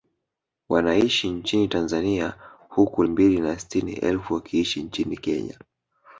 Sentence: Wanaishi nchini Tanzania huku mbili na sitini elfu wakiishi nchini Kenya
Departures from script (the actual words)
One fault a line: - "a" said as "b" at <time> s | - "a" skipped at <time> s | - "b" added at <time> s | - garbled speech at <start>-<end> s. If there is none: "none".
none